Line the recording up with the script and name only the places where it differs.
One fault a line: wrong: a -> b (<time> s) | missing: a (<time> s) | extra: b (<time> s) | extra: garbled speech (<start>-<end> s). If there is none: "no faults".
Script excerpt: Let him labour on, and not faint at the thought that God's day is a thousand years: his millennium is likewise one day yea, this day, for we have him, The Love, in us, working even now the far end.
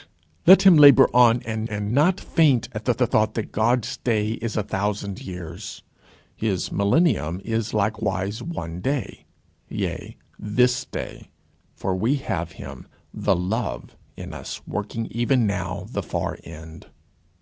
extra: and (1.7 s)
extra: the (3.0 s)